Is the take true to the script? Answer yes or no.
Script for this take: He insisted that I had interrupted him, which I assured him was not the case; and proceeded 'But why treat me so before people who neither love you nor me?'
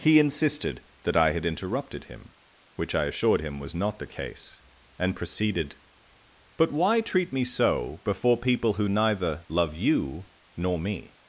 yes